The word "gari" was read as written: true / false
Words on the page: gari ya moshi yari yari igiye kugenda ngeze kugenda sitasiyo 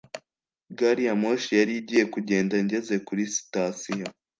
true